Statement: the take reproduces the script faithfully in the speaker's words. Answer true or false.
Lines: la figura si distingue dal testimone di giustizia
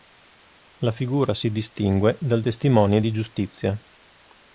true